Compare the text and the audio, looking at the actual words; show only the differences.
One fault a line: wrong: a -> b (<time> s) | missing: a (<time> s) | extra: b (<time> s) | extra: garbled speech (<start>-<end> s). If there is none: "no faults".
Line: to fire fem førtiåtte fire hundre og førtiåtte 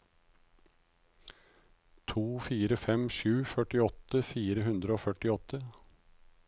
extra: sju (3.2 s)